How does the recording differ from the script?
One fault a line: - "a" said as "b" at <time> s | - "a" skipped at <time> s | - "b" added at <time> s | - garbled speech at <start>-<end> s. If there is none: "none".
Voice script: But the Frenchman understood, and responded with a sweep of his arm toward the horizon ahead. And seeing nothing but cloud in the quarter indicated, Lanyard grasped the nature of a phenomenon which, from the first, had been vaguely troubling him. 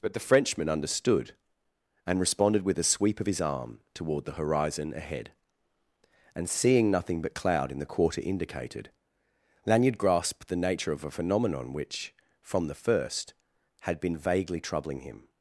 none